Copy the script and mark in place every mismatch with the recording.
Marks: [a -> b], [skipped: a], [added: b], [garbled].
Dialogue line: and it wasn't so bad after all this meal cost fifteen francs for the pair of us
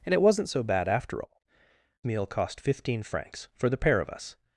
and it wasn't so bad after all [skipped: this] meal cost fifteen francs for the pair of us